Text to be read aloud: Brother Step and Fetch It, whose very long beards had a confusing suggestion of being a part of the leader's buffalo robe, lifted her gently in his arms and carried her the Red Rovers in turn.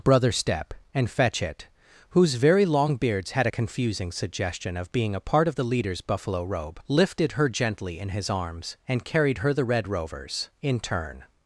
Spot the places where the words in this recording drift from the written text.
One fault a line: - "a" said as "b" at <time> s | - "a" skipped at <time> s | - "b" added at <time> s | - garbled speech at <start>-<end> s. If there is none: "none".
none